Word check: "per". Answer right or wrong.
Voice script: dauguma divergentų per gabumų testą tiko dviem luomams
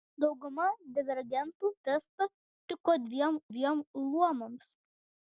wrong